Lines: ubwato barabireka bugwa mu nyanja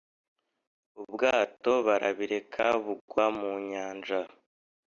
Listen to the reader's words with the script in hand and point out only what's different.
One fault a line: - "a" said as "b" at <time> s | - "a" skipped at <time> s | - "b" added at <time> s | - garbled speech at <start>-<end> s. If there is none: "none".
none